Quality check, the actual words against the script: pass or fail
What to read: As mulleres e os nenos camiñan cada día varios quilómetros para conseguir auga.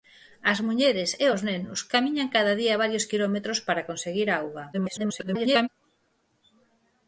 fail